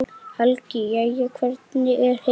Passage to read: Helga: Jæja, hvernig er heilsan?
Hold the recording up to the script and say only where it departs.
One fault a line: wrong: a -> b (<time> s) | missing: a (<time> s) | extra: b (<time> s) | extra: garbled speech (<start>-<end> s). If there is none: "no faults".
no faults